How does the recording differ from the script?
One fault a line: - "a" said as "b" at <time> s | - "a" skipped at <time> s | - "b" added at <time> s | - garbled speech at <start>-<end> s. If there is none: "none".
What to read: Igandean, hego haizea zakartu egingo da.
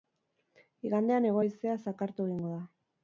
none